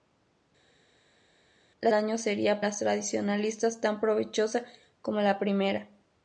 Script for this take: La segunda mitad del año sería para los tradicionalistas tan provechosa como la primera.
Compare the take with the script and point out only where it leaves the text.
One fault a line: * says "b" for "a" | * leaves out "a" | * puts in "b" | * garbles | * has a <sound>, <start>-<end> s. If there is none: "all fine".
* leaves out "segunda mitad del"
* leaves out "para"